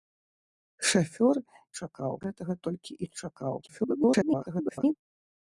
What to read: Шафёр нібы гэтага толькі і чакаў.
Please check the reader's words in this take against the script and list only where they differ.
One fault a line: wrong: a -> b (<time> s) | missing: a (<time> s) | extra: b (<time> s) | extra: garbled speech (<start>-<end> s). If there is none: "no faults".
wrong: нібы -> чакаў (1.8 s)
extra: garbled speech (3.6-4.9 s)